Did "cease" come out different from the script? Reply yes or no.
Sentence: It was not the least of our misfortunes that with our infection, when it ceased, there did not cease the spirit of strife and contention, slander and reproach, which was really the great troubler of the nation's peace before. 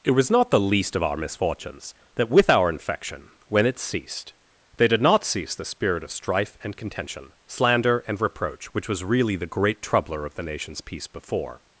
no